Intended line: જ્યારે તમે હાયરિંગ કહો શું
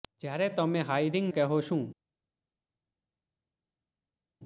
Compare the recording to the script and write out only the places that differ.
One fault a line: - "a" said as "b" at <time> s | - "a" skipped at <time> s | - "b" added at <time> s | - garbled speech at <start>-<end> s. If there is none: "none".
none